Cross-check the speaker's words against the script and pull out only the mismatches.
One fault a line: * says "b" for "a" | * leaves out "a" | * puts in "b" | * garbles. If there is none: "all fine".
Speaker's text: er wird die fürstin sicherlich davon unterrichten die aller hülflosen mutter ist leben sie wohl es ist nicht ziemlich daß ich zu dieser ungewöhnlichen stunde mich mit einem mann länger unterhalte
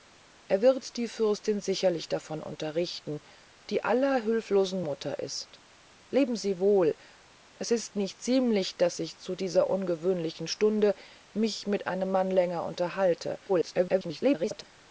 * garbles